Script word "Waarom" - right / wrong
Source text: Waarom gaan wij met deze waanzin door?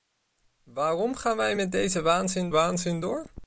right